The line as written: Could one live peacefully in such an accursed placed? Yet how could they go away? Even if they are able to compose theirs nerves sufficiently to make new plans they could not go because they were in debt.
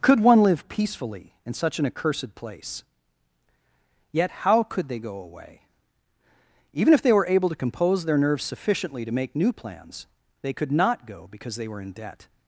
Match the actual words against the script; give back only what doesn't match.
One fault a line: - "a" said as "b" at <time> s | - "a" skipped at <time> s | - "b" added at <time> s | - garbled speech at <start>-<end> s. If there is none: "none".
- "placed" said as "place" at 2.3 s
- "are" said as "were" at 7.1 s
- "theirs" said as "their" at 8.0 s